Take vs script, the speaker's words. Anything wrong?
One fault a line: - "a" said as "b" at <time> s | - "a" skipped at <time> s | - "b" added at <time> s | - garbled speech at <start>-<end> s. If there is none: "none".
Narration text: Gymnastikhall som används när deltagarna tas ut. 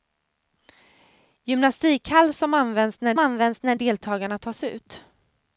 - "används när" added at 3.2 s